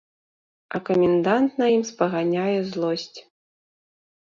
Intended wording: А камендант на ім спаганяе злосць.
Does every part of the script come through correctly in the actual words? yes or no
yes